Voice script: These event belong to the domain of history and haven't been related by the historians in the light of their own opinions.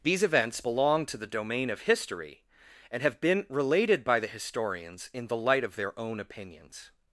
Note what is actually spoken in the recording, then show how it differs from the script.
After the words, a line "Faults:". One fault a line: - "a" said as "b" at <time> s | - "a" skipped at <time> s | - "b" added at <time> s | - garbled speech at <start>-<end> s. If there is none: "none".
These events belong to the domain of history and have been related by the historians in the light of their own opinions.
Faults:
- "event" said as "events" at 0.2 s
- "haven't" said as "have" at 3.0 s